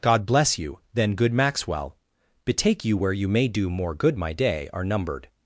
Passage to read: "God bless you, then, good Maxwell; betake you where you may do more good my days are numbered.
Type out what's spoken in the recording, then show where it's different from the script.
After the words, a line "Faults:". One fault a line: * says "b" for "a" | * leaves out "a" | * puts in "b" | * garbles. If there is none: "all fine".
"God bless you, then, good Maxwell; betake you where you may do more good my day are numbered.
Faults:
* says "day" for "days"